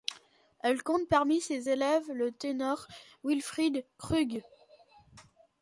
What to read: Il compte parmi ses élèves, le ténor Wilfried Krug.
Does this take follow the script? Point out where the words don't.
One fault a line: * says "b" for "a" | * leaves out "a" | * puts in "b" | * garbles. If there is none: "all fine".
* says "Elle" for "Il"